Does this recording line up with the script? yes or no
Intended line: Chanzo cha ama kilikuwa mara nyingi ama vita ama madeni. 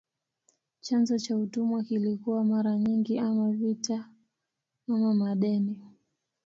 no